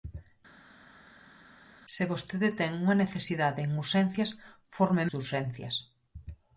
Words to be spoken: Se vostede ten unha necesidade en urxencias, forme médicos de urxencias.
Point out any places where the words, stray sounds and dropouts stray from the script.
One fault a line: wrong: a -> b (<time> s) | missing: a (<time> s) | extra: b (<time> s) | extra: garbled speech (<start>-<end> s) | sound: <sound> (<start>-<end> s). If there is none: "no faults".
missing: médicos (5.0 s)